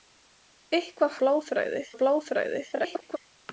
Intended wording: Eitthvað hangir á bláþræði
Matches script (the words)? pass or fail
fail